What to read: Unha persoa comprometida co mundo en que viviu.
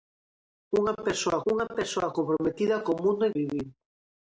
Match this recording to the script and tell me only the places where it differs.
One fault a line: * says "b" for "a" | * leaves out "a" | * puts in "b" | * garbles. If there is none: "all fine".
* puts in "unha persoa"
* leaves out "que"